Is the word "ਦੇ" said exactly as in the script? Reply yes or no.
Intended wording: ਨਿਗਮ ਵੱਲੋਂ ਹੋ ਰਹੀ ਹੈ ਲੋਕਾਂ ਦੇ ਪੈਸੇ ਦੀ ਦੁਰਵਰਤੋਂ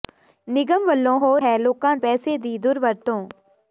no